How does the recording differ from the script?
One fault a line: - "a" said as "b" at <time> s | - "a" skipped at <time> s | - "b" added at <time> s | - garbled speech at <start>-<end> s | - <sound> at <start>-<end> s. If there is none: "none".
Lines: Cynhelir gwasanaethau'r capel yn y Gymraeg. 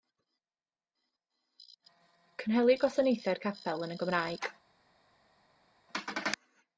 none